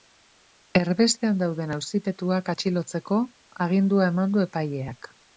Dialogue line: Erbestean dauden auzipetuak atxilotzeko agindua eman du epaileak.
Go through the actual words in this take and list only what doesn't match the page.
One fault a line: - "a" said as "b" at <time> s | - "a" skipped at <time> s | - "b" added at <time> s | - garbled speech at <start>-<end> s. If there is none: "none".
none